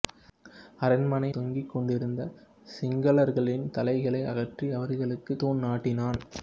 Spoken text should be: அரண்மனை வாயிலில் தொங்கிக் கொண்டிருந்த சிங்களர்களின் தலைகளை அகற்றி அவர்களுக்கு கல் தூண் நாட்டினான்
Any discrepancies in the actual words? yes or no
yes